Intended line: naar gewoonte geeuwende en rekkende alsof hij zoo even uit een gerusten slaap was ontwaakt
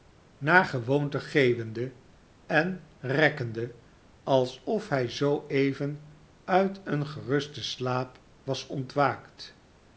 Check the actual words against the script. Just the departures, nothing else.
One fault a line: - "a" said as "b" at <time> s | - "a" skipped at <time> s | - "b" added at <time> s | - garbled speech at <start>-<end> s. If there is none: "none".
none